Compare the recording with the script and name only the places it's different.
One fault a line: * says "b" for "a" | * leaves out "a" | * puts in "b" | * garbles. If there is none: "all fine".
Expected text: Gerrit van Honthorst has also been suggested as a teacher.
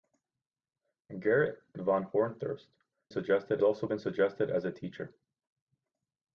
* says "suggested" for "has"